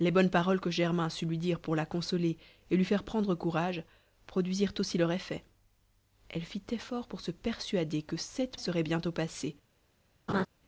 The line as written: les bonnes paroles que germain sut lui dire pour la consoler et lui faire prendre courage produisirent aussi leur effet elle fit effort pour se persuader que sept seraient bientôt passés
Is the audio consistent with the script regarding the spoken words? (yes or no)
yes